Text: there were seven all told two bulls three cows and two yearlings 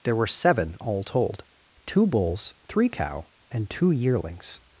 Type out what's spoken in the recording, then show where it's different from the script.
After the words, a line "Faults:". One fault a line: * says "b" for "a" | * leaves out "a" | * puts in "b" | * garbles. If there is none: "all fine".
there were seven all told two bulls three cow and two yearlings
Faults:
* says "cow" for "cows"